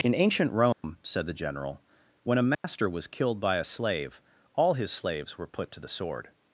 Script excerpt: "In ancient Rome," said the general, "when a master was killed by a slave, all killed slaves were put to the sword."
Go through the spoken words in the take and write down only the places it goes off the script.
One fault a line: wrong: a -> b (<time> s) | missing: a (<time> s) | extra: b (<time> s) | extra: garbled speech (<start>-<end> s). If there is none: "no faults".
wrong: killed -> his (4.7 s)